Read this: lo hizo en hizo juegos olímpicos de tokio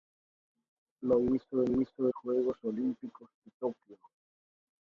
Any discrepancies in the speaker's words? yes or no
no